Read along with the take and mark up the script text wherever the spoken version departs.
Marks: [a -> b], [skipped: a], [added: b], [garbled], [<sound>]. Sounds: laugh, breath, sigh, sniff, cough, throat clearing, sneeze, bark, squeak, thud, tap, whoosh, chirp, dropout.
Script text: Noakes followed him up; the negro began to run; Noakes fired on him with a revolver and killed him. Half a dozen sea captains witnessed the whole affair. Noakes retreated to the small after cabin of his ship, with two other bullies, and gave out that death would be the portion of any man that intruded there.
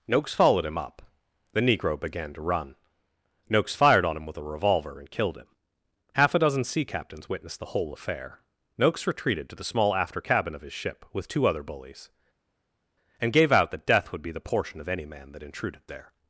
Noakes followed him up; the negro began to run; Noakes fired on him with a revolver and killed him. Half a dozen sea captains witnessed the whole affair. Noakes retreated to the small after cabin of his ship, with two other bullies, and gave out that death would be the portion of any man that intruded there.